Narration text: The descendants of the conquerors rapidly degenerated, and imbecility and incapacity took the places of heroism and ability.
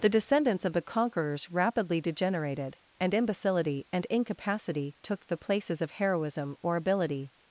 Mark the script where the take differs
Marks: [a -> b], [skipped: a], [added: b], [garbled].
The descendants of the conquerors rapidly degenerated, and imbecility and incapacity took the places of heroism [and -> or] ability.